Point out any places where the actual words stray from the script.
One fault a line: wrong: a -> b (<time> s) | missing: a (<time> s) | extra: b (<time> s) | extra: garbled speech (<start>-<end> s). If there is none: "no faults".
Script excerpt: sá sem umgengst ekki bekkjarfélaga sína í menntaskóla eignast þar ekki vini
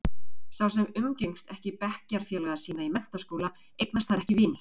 no faults